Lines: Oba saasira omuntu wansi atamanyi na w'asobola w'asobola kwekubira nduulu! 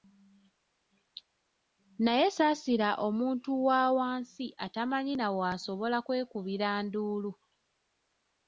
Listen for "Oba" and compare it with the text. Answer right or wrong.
wrong